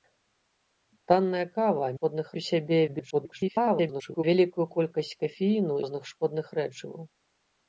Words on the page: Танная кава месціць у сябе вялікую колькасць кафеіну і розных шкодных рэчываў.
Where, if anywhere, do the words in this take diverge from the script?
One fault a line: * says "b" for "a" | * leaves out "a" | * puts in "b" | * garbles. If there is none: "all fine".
* says "шкодных" for "месціць"
* garbles
* leaves out "і"